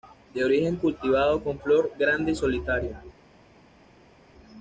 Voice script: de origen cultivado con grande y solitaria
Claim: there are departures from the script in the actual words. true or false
true